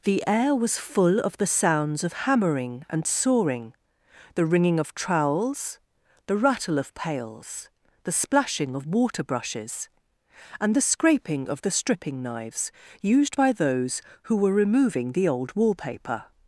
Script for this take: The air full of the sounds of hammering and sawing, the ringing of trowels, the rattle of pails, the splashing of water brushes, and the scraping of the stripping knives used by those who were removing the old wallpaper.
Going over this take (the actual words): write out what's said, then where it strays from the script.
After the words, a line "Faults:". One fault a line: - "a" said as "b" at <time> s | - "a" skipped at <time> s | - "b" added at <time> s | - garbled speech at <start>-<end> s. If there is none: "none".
The air was full of the sounds of hammering and sawing, the ringing of trowels, the rattle of pails, the splashing of water brushes, and the scraping of the stripping knives used by those who were removing the old wallpaper.
Faults:
- "was" added at 0.6 s